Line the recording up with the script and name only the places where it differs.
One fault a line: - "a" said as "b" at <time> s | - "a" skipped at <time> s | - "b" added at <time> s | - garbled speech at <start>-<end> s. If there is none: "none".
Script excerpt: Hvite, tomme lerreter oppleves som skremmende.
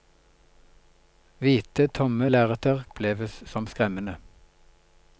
none